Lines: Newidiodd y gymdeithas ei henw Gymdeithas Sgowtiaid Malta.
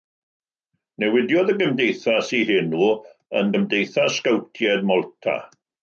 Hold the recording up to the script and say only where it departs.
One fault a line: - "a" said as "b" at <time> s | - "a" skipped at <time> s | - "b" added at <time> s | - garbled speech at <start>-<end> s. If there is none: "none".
- "yn" added at 3.4 s